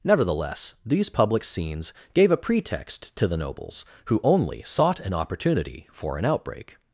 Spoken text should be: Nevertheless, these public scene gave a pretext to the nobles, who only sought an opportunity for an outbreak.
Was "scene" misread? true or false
true